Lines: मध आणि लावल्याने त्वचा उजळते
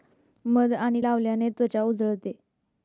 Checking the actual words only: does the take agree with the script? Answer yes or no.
yes